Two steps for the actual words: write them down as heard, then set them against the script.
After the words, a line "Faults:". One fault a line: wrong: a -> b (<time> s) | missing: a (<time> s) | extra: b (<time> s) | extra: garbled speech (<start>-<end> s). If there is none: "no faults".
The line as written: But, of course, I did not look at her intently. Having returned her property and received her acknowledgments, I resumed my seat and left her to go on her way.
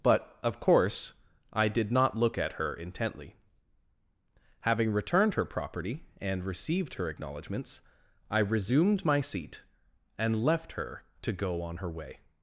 But, of course, I did not look at her intently. Having returned her property and received her acknowledgments, I resumed my seat and left her to go on her way.
Faults:
no faults